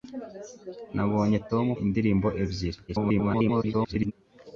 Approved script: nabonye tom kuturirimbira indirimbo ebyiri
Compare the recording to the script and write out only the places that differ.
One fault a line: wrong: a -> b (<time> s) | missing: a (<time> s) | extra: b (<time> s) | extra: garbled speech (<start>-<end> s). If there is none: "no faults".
missing: kuturirimbira (1.6 s)
extra: garbled speech (2.9-4.1 s)